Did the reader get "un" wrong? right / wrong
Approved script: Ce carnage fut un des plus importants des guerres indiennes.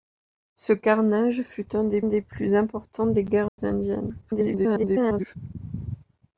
right